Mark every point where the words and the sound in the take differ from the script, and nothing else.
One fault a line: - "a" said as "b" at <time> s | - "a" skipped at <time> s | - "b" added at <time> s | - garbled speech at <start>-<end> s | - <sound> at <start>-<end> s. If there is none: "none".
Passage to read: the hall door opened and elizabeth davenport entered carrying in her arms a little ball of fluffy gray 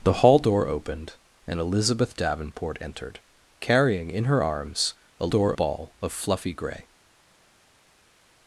- "little" said as "door" at 5.3 s